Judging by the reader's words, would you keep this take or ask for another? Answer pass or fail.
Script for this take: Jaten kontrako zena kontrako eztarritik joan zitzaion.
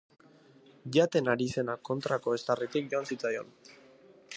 fail